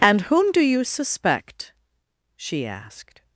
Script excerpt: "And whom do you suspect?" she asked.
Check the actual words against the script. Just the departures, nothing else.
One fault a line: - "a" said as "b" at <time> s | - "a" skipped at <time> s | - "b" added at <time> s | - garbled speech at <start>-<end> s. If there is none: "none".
none